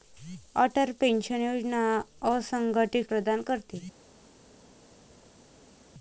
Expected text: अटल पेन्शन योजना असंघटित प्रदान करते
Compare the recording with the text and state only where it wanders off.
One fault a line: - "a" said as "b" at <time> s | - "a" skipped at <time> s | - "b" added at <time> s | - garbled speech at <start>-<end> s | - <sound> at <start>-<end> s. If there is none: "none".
none